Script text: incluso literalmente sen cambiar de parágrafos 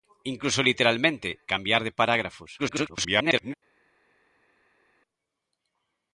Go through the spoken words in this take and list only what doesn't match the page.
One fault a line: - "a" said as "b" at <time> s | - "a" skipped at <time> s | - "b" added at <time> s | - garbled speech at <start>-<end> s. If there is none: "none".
- "sen" skipped at 1.3 s
- garbled speech at 2.6-3.5 s